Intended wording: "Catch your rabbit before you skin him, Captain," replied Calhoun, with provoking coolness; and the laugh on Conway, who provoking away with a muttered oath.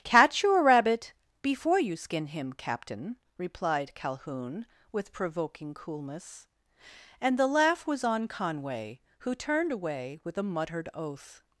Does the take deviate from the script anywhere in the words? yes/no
yes